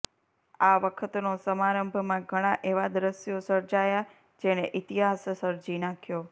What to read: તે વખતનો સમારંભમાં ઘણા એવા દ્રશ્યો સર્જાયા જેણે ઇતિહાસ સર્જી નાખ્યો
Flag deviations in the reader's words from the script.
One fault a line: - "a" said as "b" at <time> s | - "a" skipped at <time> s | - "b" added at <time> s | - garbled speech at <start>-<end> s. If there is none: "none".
- "તે" said as "આ" at 0.6 s